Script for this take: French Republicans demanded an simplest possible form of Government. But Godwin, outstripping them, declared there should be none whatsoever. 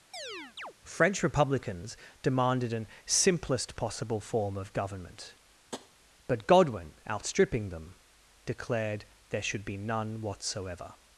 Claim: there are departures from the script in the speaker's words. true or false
false